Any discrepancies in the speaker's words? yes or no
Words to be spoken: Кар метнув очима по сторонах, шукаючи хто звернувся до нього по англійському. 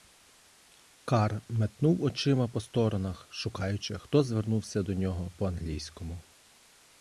no